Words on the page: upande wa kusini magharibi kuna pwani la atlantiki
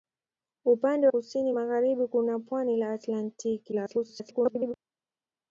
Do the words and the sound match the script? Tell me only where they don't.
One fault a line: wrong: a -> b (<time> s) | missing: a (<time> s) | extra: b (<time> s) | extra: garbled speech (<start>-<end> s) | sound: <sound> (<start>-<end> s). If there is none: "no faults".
missing: wa (1.1 s)
extra: garbled speech (3.7-4.7 s)